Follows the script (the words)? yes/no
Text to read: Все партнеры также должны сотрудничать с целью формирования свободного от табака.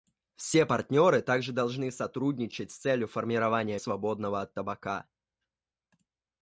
yes